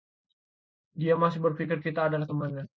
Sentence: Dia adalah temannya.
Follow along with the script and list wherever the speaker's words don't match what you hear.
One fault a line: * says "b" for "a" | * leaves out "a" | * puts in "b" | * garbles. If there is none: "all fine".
* puts in "masih berpikir kita"